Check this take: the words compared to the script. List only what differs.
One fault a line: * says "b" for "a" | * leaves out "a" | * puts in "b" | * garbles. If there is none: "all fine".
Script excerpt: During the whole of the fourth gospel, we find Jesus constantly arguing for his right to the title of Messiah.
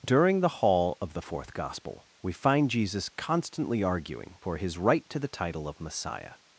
* says "hall" for "whole"